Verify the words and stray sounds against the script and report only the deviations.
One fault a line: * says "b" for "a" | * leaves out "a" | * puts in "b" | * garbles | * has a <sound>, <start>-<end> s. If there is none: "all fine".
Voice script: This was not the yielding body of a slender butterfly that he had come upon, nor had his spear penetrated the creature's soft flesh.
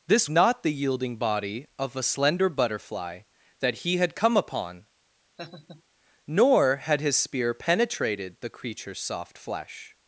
* leaves out "was"
* has a laugh, 5.4-5.8 s